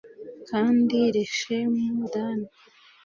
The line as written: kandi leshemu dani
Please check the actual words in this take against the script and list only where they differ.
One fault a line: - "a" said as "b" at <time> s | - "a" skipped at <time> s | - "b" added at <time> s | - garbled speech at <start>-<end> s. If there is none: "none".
none